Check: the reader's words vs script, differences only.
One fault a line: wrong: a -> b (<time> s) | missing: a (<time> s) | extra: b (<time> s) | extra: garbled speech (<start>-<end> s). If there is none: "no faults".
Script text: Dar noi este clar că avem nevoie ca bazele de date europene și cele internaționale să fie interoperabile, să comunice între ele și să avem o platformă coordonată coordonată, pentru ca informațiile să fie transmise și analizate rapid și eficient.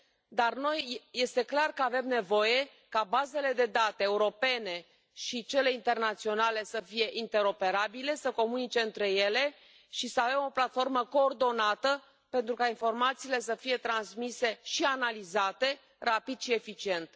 missing: coordonată (12.0 s)